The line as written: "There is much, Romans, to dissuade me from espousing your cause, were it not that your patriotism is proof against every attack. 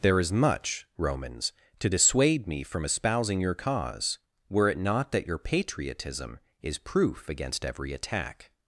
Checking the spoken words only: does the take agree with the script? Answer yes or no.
yes